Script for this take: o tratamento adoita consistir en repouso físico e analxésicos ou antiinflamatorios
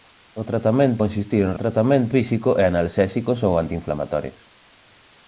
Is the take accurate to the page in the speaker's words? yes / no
no